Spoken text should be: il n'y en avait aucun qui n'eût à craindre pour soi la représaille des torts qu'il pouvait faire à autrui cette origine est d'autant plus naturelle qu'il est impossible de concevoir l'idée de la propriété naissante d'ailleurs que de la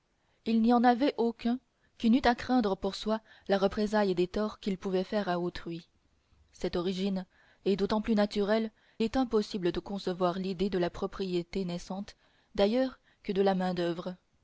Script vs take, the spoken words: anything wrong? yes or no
yes